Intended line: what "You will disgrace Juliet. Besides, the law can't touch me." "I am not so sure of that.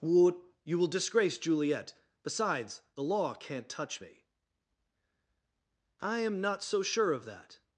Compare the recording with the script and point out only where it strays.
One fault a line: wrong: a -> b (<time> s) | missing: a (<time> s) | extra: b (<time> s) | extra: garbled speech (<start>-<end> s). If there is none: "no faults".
no faults